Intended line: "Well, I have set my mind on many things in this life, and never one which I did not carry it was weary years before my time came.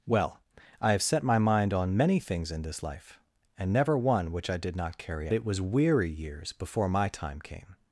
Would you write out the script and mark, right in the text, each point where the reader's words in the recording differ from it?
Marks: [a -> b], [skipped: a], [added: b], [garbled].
"Well, I have set my mind on many things in this life, and never one which I did not carry it was weary years before my time came.